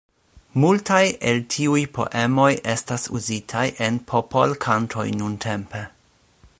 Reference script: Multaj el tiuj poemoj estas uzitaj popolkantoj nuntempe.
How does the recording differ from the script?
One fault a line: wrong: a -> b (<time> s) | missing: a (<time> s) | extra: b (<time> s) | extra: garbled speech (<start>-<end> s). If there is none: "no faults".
extra: en (3.9 s)